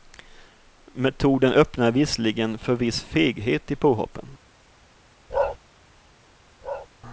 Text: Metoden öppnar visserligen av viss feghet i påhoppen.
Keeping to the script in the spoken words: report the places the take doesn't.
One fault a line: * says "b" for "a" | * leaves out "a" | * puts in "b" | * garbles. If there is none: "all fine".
* says "för" for "av"